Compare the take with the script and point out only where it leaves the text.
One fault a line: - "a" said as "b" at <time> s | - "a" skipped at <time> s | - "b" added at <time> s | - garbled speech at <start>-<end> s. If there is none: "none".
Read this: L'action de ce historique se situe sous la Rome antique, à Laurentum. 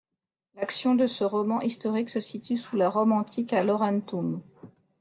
- "roman" added at 1.2 s